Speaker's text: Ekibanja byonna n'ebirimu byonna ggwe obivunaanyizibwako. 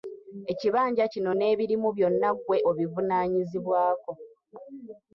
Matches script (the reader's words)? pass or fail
fail